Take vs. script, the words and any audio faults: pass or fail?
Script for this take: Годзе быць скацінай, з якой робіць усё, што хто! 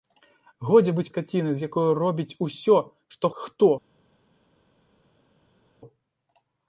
pass